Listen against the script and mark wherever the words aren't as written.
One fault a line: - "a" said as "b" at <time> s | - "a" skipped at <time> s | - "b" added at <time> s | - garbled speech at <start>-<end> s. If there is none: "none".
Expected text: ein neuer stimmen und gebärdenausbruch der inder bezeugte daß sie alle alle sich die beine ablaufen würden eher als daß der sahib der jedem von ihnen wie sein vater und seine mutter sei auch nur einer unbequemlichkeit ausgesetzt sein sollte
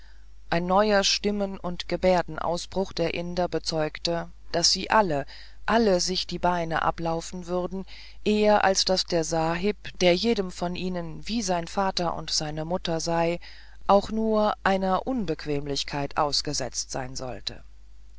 none